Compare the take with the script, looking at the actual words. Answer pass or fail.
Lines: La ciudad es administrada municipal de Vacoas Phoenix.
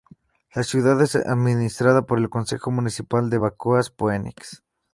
fail